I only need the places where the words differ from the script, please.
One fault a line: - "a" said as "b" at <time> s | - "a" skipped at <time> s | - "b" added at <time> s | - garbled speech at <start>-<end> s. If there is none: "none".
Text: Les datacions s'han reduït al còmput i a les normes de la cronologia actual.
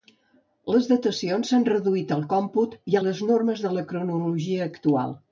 none